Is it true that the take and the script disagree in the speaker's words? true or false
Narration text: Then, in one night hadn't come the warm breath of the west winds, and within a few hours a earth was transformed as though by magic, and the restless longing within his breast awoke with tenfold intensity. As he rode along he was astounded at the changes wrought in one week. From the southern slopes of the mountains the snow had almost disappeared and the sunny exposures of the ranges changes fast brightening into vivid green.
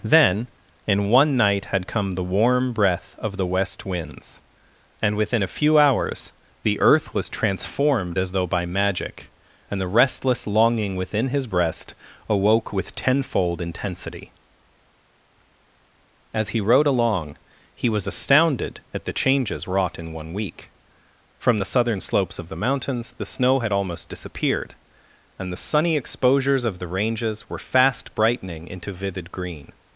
true